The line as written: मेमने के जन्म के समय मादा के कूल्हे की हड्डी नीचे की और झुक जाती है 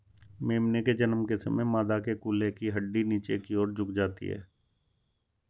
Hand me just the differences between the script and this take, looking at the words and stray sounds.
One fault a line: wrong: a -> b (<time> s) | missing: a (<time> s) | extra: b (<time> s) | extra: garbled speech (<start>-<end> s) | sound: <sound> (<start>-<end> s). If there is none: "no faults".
no faults